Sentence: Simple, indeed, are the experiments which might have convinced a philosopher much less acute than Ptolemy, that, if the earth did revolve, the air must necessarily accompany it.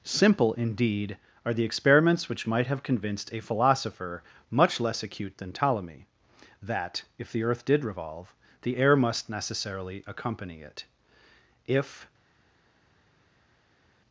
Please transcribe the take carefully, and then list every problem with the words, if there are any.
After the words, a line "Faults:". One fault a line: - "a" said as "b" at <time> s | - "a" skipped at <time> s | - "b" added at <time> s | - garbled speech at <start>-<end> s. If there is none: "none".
Simple, indeed, are the experiments which might have convinced a philosopher much less acute than Ptolemy, that, if the earth did revolve, the air must necessarily accompany it. If
Faults:
- "If" added at 11.7 s